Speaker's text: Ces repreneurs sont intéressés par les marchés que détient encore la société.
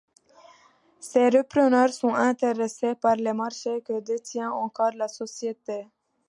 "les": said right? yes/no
yes